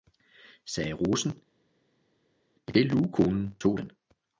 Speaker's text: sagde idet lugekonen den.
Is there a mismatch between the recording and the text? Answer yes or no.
yes